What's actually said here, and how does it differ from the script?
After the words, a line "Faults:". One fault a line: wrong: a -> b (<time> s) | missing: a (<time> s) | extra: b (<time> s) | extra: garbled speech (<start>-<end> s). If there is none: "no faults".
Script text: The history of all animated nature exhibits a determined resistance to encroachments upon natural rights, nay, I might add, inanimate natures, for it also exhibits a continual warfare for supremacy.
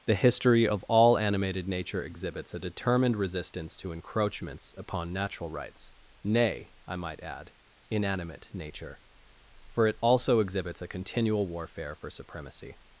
The history of all animated nature exhibits a determined resistance to encroachments upon natural rights, nay, I might add, inanimate nature, for it also exhibits a continual warfare for supremacy.
Faults:
wrong: natures -> nature (8.5 s)